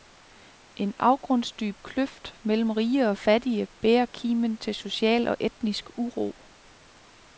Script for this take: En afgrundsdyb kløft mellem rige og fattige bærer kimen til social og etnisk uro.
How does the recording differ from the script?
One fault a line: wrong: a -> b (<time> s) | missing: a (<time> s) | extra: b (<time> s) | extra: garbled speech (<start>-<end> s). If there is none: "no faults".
no faults